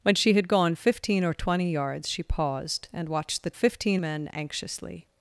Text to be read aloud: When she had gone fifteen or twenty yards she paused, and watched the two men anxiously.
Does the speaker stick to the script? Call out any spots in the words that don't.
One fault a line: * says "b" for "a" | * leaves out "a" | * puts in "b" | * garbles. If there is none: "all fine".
* says "fifteen" for "two"